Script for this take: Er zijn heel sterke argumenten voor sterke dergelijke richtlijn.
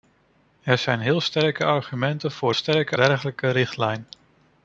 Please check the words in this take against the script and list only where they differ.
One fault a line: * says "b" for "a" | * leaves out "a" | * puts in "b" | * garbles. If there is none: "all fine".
all fine